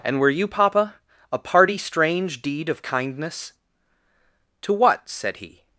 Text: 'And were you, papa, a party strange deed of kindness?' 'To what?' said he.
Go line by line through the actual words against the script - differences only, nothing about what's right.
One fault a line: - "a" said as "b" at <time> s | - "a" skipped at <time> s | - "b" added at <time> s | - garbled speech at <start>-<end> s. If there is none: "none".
none